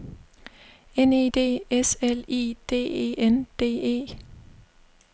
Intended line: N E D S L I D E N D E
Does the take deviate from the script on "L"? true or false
false